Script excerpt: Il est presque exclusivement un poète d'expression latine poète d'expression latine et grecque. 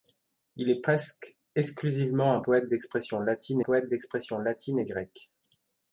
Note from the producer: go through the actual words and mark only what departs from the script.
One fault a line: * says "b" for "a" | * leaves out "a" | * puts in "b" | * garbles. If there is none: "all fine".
all fine